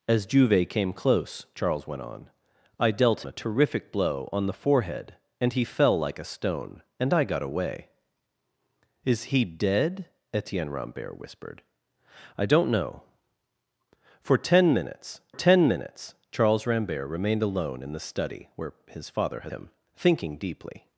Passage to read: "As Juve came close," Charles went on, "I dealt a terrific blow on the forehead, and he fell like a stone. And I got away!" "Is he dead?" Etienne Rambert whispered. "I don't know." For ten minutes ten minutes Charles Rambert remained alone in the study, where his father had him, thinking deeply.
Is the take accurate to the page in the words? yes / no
yes